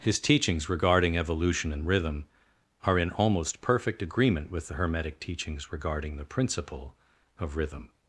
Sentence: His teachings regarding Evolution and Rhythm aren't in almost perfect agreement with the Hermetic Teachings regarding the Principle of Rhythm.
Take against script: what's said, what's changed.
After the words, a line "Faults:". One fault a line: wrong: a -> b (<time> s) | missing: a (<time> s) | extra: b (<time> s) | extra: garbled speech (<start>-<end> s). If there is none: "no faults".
His teachings regarding Evolution and Rhythm are in almost perfect agreement with the Hermetic Teachings regarding the Principle of Rhythm.
Faults:
wrong: aren't -> are (2.8 s)